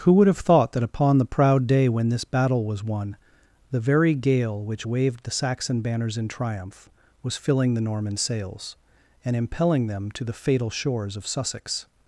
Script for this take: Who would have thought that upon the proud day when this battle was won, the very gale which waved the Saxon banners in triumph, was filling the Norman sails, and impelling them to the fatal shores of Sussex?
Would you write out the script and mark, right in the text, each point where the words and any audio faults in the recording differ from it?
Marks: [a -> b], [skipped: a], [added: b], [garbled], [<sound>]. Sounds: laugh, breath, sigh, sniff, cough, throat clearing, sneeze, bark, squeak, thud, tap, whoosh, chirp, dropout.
Who would have thought that upon the proud day when this battle was won, the very gale which waved the Saxon banners in triumph, was filling the Norman sails, and impelling them to the fatal shores of Sussex?